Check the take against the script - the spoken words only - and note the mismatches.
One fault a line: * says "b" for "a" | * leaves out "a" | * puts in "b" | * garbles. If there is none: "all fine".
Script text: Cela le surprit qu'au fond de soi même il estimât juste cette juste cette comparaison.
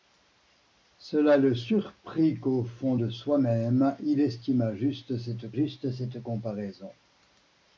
all fine